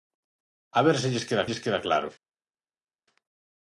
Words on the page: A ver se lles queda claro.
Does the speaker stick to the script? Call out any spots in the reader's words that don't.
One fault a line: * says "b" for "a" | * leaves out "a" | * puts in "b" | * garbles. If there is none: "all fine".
* puts in "lles queda"